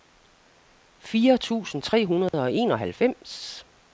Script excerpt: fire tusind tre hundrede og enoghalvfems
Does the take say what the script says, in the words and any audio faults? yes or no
no